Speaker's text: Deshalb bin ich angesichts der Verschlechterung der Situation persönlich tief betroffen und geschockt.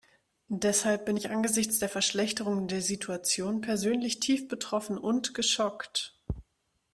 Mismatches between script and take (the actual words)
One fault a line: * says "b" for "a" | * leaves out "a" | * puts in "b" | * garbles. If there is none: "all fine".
all fine